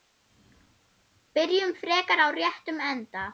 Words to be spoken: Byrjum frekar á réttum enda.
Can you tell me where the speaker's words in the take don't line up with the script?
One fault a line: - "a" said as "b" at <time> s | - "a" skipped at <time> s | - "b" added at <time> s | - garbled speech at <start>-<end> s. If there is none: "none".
none